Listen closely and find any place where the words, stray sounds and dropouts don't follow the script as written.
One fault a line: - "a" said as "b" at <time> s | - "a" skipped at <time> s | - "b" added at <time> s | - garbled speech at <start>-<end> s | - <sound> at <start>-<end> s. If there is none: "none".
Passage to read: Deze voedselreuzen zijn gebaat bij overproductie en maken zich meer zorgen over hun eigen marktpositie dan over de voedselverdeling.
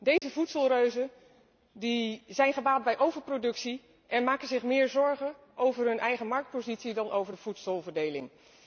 - dropout at 0.2-0.2 s